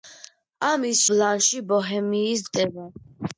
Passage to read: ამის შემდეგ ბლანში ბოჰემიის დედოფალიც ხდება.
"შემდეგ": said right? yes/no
no